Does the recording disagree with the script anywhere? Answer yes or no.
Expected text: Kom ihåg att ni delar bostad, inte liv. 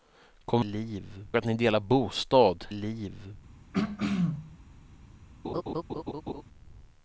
yes